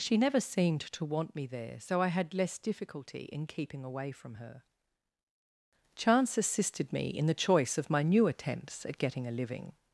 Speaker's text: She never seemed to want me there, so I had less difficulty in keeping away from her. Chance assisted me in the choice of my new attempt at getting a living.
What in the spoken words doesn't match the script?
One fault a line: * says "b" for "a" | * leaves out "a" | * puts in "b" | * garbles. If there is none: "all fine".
* says "attempts" for "attempt"